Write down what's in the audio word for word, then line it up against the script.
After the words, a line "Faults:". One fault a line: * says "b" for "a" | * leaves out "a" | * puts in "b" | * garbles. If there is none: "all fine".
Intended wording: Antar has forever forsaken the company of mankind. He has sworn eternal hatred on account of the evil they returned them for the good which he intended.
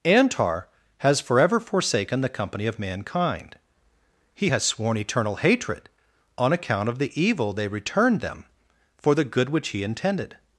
Antar has forever forsaken the company of mankind. He has sworn eternal hatred on account of the evil they returned them for the good which he intended.
Faults:
all fine